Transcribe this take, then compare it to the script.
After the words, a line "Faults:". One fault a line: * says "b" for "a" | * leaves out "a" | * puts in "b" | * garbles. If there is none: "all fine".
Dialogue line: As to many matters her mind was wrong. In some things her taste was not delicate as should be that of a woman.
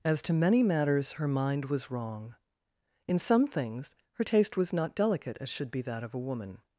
As to many matters her mind was wrong. In some things her taste was not delicate as should be that of a woman.
Faults:
all fine